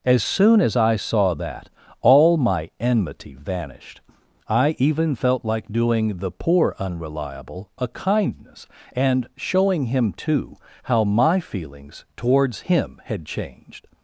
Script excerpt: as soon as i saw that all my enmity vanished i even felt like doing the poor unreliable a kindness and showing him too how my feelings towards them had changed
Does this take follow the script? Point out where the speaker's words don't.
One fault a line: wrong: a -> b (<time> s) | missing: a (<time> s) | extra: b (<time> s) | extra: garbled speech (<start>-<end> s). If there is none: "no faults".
wrong: them -> him (12.6 s)